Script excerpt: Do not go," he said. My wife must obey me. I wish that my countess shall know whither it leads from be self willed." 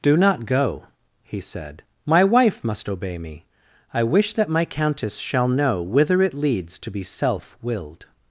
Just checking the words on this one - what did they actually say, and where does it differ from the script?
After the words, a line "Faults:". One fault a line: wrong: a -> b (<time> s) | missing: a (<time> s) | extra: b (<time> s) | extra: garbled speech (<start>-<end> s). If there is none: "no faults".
Do not go," he said. My wife must obey me. I wish that my countess shall know whither it leads to be self willed."
Faults:
wrong: from -> to (6.8 s)